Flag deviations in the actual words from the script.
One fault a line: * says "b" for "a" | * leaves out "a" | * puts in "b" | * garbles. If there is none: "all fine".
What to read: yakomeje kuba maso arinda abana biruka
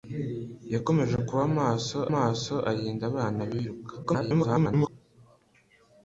* puts in "maso"
* garbles